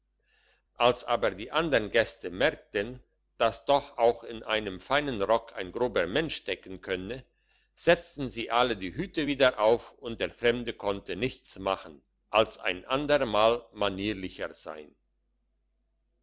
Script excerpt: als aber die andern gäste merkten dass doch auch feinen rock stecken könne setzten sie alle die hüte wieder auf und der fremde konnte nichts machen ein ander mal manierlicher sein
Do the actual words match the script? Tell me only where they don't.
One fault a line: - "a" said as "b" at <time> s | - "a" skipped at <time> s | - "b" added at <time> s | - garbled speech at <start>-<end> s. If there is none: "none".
- "in einem" added at 4.2 s
- "ein grober mensch" added at 5.6 s
- "als" added at 12.3 s